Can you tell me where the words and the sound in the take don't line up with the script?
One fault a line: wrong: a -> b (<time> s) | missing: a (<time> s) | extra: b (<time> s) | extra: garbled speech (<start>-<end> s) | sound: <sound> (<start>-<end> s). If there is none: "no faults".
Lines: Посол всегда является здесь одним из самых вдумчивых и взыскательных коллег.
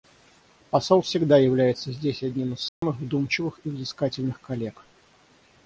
sound: dropout (2.7-2.8 s)